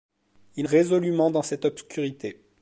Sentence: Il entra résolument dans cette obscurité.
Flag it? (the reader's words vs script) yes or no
yes